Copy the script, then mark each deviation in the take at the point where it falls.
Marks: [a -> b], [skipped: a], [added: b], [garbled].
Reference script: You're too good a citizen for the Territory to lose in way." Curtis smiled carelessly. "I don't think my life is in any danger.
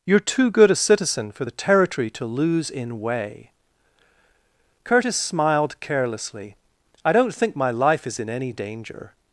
You're too good a citizen for the Territory to lose in way." Curtis smiled carelessly. "I don't think my life is in any danger.